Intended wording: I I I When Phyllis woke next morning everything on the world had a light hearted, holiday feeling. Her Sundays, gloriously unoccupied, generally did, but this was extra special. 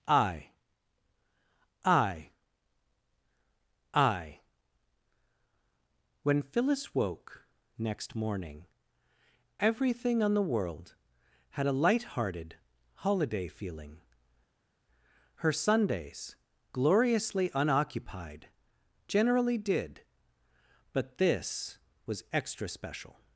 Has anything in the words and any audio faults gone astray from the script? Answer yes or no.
no